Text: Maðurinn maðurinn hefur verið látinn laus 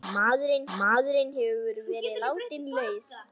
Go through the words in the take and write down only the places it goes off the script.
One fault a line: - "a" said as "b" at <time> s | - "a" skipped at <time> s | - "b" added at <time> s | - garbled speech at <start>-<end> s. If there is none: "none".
none